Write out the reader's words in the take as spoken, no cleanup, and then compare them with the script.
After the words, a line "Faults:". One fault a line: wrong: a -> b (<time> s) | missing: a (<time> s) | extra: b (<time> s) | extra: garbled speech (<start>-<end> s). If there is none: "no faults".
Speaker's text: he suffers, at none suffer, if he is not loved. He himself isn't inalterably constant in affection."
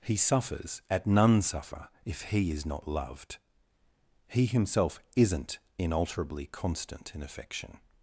he suffers, at none suffer, if he is not loved. He himself isn't inalterably constant in affection."
Faults:
no faults